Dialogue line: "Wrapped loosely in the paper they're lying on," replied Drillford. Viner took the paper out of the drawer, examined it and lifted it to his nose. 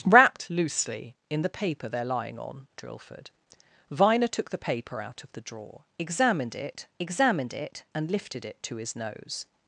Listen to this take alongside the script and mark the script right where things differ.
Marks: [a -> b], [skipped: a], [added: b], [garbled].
"Wrapped loosely in the paper they're lying on," [skipped: replied] Drillford. Viner took the paper out of the drawer, examined it [added: examined it] and lifted it to his nose.